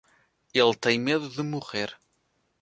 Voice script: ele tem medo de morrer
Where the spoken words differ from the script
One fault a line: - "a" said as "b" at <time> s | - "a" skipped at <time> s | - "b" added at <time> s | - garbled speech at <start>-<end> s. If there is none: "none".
none